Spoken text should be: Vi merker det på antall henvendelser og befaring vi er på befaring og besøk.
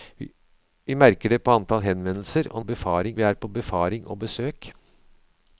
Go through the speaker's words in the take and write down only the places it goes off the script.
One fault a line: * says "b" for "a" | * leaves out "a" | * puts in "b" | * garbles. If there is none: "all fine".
all fine